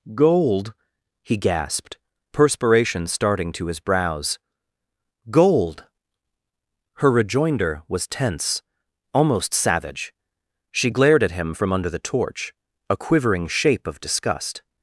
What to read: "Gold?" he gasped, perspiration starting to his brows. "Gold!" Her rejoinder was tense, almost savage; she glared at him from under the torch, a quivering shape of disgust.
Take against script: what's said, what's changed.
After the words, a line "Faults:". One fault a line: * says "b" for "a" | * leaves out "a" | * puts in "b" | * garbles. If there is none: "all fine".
"Gold?" he gasped, perspiration starting to his brows. "Gold!" Her rejoinder was tense, almost savage; she glared at him from under the torch, a quivering shape of disgust.
Faults:
all fine